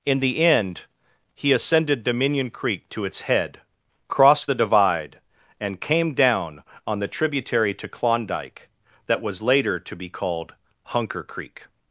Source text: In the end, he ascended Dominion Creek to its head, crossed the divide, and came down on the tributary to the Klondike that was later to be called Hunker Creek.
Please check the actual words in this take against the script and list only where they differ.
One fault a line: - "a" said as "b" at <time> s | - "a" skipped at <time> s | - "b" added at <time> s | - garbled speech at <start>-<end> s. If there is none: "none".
- "the" skipped at 7.9 s